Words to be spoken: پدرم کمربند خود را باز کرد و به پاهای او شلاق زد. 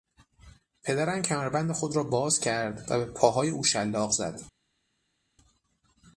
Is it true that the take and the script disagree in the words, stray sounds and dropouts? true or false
false